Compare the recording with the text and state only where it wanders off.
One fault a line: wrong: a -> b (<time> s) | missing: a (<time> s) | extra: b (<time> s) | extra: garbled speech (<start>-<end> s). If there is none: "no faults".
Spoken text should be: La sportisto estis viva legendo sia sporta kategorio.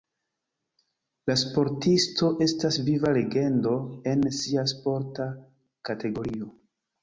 wrong: estis -> estas (2.5 s)
extra: en (4.1 s)